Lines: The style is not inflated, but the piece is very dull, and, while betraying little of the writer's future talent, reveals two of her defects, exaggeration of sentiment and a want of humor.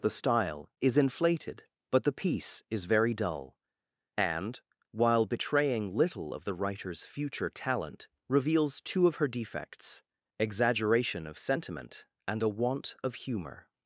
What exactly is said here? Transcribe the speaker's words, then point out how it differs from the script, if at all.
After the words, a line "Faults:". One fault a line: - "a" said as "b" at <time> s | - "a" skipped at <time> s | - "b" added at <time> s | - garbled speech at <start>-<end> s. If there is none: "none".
The style is inflated, but the piece is very dull, and, while betraying little of the writer's future talent, reveals two of her defects, exaggeration of sentiment and a want of humor.
Faults:
- "not" skipped at 1.0 s